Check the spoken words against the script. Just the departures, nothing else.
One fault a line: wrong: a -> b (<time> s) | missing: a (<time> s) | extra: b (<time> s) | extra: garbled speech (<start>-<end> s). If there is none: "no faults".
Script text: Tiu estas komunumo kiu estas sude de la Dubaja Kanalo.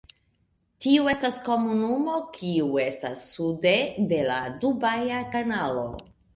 no faults